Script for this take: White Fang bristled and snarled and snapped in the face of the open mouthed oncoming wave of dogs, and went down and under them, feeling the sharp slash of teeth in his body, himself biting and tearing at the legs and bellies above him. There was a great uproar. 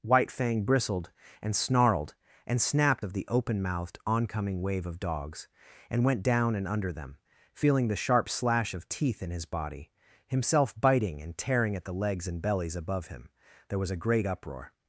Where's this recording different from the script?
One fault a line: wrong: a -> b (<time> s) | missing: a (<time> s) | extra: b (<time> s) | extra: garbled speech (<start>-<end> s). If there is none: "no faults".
missing: in the face (3.0 s)